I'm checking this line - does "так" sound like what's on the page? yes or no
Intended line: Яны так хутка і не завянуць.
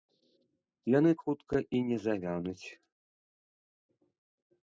no